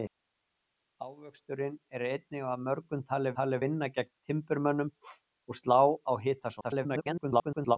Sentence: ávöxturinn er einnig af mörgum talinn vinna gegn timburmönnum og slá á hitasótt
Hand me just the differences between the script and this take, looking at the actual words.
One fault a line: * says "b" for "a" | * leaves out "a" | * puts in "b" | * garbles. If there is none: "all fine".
* puts in "talinn"
* garbles